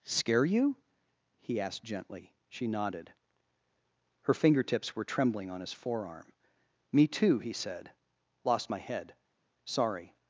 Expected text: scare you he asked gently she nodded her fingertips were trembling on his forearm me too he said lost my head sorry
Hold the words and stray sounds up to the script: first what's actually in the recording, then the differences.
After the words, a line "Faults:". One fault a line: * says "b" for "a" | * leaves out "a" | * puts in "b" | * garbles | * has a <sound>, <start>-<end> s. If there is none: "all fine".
scare you he asked gently she nodded her fingertips were trembling on his forearm me too he said lost my head sorry
Faults:
all fine